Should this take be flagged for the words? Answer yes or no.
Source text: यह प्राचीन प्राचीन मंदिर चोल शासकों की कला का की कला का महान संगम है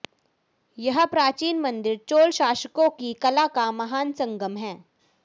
yes